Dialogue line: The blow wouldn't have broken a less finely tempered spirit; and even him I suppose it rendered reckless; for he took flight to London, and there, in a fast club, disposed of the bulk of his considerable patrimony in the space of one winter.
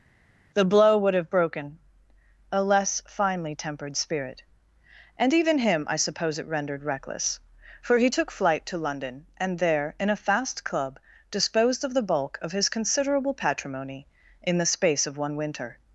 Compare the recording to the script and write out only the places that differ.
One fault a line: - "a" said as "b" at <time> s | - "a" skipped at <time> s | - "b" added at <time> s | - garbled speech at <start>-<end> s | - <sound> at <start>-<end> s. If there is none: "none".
- "wouldn't" said as "would" at 1.0 s